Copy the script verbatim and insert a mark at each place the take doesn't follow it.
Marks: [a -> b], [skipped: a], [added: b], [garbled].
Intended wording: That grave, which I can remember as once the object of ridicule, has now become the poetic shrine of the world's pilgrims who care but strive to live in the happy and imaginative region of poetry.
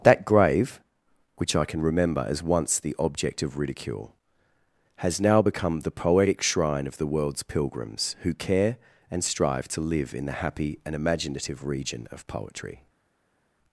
That grave, which I can remember as once the object of ridicule, has now become the poetic shrine of the world's pilgrims who care [but -> and] strive to live in the happy and imaginative region of poetry.